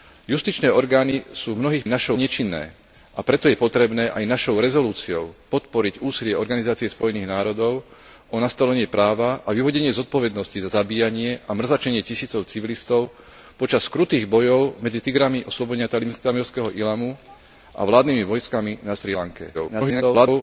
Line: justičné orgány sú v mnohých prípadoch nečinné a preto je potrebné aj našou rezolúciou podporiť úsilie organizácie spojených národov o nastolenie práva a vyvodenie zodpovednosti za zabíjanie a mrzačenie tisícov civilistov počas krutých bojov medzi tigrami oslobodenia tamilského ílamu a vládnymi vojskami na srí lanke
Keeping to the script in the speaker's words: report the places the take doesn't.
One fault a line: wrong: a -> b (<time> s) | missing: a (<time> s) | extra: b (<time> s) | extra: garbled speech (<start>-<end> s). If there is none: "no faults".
wrong: prípadoch -> našou (1.9 s)
extra: garbled speech (19.5-20.4 s)